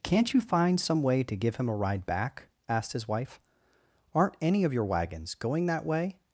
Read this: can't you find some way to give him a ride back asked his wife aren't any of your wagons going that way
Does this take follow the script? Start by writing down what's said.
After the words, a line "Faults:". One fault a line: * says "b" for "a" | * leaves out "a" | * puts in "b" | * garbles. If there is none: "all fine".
can't you find some way to give him a ride back asked his wife aren't any of your wagons going that way
Faults:
all fine